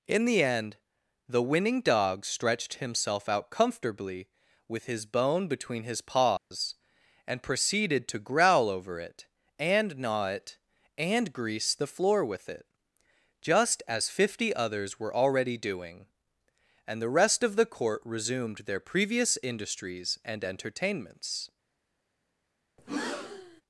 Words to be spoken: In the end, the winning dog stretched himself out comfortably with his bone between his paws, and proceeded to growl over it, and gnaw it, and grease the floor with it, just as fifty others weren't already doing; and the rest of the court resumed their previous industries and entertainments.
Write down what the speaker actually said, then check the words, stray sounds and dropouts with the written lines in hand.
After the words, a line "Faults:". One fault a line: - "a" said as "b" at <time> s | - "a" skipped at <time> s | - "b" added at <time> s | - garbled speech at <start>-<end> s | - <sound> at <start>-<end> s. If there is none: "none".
In the end, the winning dog stretched himself out comfortably with his bone between his paws, and proceeded to growl over it, and gnaw it, and grease the floor with it, just as fifty others were already doing; and the rest of the court resumed their previous industries and entertainments.
Faults:
- dropout at 6.4-6.5 s
- "weren't" said as "were" at 15.0 s
- breath at 22.8-23.6 s